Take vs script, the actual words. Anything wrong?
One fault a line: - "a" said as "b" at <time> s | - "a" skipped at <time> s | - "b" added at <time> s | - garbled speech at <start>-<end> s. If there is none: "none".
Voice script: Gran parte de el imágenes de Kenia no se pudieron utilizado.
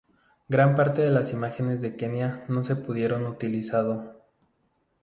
- "el" said as "las" at 1.1 s